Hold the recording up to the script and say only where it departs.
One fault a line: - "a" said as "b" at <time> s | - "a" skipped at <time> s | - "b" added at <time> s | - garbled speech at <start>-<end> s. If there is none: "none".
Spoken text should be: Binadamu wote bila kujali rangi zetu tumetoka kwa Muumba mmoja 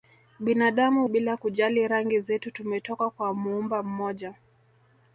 - "wote" skipped at 1.1 s